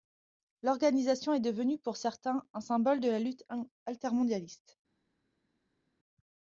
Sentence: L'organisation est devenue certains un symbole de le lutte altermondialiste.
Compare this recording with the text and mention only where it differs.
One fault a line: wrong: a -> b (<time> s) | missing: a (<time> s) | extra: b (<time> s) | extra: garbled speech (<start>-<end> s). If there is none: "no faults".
extra: pour (1.8 s)
wrong: le -> la (3.1 s)